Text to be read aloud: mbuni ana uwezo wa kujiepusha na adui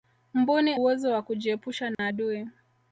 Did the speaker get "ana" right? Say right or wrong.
wrong